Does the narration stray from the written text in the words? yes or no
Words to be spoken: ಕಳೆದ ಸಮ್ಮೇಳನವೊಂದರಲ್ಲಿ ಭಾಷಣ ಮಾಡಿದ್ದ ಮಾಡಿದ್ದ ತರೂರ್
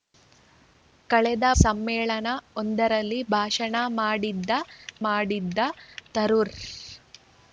no